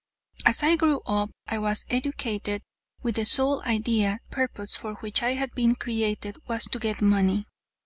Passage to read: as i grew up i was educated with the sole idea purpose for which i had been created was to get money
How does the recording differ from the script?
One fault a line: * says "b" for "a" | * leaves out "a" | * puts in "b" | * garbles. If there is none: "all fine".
all fine